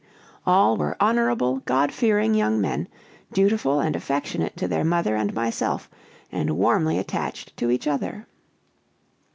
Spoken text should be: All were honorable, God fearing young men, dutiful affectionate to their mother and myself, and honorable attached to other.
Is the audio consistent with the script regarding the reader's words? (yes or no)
no